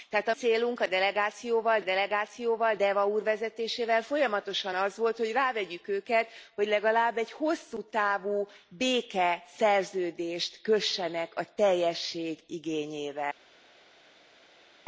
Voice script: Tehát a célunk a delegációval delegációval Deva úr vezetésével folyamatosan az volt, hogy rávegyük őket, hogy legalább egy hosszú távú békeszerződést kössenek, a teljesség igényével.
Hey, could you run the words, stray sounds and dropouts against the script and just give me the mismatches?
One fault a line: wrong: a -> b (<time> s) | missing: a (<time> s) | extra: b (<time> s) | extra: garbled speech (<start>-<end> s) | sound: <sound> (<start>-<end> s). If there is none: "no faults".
no faults